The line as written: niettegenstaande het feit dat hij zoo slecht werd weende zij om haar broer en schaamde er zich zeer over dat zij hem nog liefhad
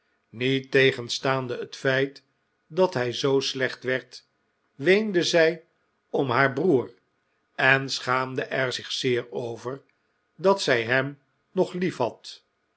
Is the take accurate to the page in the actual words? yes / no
yes